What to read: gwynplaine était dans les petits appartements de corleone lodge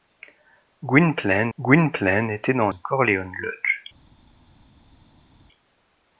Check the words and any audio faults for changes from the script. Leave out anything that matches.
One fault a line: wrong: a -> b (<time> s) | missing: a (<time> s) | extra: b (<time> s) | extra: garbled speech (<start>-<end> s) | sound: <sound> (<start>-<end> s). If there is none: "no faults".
extra: gwynplaine (1.6 s)
missing: les petits appartements (2.7 s)